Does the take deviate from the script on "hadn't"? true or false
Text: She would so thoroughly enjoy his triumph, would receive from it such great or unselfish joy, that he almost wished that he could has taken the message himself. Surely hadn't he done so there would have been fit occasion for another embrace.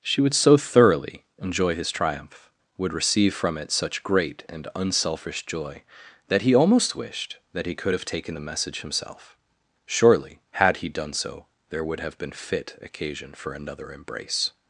true